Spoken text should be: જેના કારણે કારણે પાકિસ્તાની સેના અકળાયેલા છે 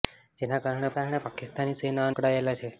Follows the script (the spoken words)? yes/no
yes